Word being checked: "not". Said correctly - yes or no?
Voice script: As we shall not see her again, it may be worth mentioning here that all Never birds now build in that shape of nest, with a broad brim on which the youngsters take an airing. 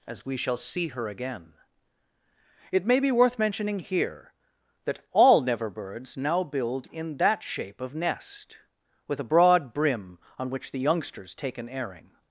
no